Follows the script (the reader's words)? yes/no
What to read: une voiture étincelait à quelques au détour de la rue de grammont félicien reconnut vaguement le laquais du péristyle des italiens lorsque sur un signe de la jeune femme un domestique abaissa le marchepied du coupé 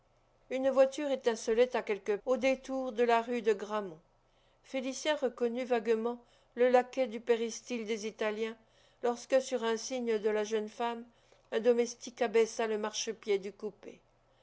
yes